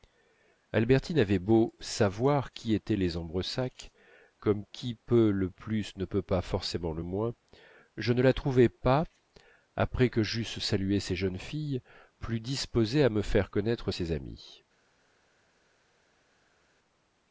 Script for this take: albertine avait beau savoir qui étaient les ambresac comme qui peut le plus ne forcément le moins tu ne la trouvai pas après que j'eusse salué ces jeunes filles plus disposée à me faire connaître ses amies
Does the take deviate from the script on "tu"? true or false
true